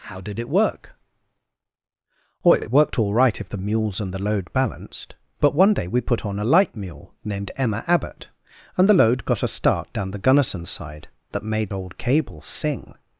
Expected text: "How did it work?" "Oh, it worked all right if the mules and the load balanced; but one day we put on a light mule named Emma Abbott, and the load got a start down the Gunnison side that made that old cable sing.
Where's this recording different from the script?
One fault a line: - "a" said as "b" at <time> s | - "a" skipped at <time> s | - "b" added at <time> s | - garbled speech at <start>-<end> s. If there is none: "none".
- "it" added at 2.6 s
- "that" skipped at 11.7 s